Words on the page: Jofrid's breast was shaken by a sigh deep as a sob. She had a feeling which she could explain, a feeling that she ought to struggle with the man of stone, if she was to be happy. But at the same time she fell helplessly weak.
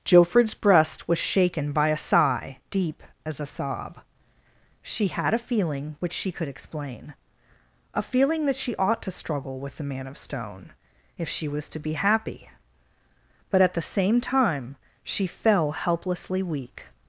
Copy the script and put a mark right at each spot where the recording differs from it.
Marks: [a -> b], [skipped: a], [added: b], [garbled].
Jofrid's breast was shaken by a sigh deep as a sob. She had a feeling which she could explain, a feeling that she ought to struggle with the man of stone, if she was to be happy. But at the same time she fell helplessly weak.